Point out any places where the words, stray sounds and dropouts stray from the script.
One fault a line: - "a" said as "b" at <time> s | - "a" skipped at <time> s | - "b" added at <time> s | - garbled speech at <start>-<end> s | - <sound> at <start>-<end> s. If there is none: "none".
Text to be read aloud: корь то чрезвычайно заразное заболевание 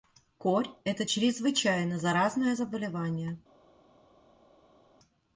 - "то" said as "это" at 0.8 s